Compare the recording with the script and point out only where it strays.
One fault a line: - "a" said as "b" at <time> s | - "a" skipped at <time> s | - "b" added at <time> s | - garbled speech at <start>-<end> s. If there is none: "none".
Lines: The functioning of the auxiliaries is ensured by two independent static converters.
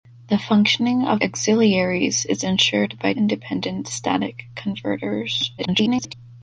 - "the" skipped at 1.2 s
- "two" skipped at 3.1 s
- garbled speech at 5.6-6.1 s